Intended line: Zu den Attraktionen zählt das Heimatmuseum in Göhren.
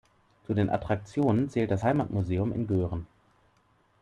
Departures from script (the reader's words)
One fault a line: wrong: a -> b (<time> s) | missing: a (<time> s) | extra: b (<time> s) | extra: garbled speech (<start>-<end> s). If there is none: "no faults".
no faults